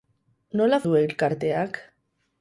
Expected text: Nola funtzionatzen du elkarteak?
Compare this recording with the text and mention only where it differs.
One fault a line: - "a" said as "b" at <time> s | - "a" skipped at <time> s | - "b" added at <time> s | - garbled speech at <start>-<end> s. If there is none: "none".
- "funtzionatzen" skipped at 0.8 s